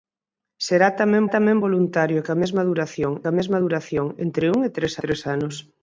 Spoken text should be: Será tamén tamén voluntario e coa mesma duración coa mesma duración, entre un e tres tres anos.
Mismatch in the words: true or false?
false